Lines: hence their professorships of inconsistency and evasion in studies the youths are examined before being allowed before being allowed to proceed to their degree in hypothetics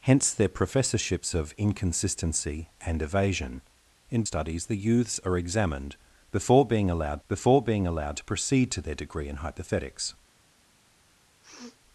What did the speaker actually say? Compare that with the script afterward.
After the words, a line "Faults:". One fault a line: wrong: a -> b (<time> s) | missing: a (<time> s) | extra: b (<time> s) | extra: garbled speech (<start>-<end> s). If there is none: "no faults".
hence their professorships of inconsistency and evasion in studies the youths are examined before being allowed before being allowed to proceed to their degree in hypothetics
Faults:
no faults